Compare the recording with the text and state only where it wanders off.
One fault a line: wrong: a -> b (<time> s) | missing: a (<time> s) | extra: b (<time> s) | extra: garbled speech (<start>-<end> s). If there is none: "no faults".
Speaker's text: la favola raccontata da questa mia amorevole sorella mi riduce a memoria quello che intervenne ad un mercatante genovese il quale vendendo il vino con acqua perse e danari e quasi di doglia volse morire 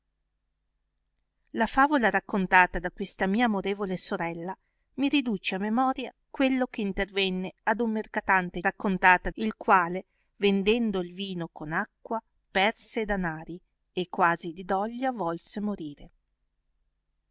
wrong: genovese -> raccontata (8.6 s)